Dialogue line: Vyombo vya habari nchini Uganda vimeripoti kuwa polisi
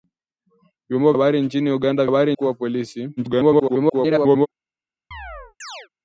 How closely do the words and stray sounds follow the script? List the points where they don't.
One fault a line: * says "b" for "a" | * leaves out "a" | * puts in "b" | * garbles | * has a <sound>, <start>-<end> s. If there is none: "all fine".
* leaves out "vya"
* says "habari" for "vimeripoti"
* garbles
* has a chirp, 5.1-5.9 s